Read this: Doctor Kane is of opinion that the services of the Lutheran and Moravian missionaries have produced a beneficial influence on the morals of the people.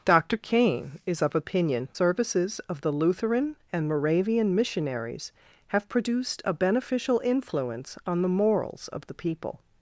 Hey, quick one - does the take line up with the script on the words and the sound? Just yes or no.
no